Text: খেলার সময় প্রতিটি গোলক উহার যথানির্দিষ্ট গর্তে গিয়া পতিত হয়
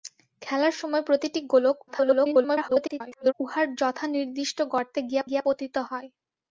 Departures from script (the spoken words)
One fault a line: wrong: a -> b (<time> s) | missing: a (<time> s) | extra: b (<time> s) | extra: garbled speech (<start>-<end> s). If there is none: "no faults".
extra: garbled speech (1.9-3.3 s)
extra: গিয়া (5.3 s)